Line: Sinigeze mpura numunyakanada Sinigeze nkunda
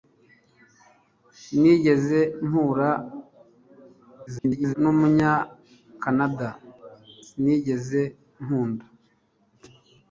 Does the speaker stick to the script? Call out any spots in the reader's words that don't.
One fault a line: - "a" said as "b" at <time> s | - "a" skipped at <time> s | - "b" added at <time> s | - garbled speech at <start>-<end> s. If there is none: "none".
- garbled speech at 4.3-4.7 s